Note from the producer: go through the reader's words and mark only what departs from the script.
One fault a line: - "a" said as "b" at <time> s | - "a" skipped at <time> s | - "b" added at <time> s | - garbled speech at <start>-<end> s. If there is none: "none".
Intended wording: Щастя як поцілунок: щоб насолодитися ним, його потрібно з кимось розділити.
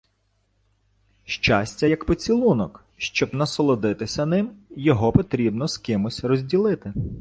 none